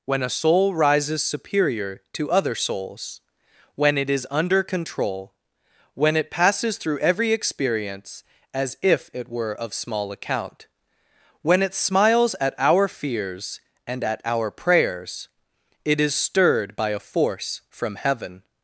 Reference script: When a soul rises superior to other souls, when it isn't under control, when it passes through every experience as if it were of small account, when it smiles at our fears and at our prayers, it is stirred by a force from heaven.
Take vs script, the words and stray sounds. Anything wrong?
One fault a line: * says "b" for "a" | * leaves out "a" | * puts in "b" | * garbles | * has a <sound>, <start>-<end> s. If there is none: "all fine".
* says "is" for "isn't"